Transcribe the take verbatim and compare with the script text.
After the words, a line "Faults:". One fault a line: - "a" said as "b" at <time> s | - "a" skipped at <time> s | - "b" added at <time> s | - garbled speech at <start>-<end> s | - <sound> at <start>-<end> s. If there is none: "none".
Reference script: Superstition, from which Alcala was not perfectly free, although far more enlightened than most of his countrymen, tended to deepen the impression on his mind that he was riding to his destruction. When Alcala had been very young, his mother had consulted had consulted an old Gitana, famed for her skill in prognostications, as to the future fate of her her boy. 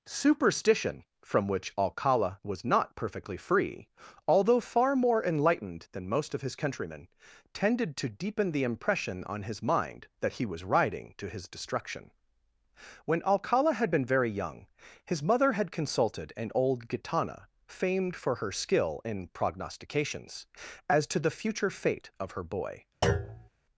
Superstition, from which Alcala was not perfectly free, although far more enlightened than most of his countrymen, tended to deepen the impression on his mind that he was riding to his destruction. When Alcala had been very young, his mother had consulted an old Gitana, famed for her skill in prognostications, as to the future fate of her boy.
Faults:
- "had consulted" skipped at 16.3 s
- "her" skipped at 22.4 s
- thud at 23.0-23.5 s